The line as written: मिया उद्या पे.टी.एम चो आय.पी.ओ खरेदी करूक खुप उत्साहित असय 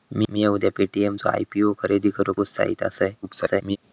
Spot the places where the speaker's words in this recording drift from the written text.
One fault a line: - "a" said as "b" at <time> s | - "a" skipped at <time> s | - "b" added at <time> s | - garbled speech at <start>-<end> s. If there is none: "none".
- "खुप" skipped at 2.4 s
- garbled speech at 3.2-3.8 s